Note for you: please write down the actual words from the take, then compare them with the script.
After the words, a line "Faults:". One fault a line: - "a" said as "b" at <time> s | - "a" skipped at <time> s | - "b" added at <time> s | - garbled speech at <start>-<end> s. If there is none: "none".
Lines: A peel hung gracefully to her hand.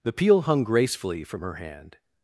The peel hung gracefully from her hand.
Faults:
- "A" said as "The" at 0.0 s
- "to" said as "from" at 1.2 s